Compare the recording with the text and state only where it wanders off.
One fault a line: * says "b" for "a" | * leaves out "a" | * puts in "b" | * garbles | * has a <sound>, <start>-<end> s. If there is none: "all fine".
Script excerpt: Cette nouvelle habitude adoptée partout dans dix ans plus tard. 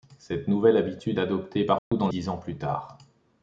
* has a dropout, 1.8-1.9 s